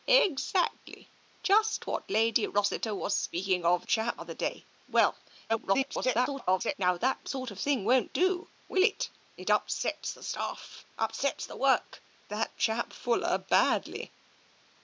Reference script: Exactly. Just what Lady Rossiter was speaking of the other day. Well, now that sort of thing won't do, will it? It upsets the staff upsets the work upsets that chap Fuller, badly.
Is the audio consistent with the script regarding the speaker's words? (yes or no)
no